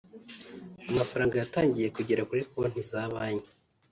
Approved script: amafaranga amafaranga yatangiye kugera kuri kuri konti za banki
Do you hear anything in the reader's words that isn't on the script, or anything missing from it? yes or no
yes